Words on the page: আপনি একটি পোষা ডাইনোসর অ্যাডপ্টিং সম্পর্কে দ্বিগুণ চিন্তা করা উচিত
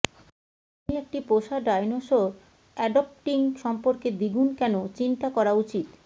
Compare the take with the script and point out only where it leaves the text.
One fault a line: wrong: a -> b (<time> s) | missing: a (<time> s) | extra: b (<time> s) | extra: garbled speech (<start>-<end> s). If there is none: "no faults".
extra: কেন (4.6 s)